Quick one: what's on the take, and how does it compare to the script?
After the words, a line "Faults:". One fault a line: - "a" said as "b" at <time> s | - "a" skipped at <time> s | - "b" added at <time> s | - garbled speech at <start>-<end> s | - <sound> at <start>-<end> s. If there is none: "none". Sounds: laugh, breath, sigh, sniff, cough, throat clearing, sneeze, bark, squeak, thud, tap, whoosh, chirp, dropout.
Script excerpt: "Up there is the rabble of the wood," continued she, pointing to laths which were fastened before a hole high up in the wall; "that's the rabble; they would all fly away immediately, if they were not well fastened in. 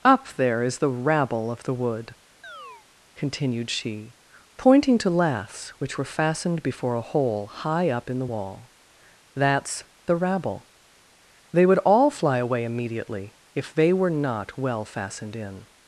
"Up there is the rabble of the wood," continued she, pointing to laths which were fastened before a hole high up in the wall; "that's the rabble; they would all fly away immediately, if they were not well fastened in.
Faults:
- chirp at 2.4-2.9 s